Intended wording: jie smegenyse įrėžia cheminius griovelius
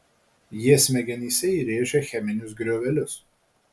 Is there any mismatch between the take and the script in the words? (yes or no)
no